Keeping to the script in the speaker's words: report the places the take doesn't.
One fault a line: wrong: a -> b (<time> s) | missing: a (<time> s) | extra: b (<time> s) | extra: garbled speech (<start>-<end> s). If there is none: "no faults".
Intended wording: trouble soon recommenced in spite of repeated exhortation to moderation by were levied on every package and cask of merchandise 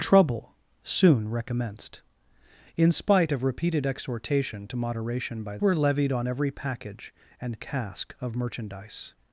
no faults